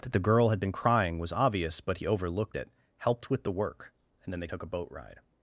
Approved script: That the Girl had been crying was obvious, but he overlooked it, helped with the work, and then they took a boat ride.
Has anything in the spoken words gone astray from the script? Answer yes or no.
no